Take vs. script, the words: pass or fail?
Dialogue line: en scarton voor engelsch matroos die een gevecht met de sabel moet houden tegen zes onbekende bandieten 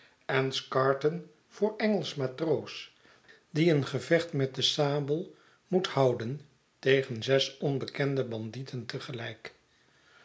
pass